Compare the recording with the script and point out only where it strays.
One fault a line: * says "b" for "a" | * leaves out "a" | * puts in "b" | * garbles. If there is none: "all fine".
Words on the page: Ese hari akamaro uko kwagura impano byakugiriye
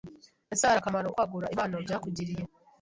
* leaves out "uko"